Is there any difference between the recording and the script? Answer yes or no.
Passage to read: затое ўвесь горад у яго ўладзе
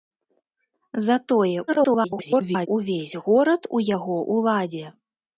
yes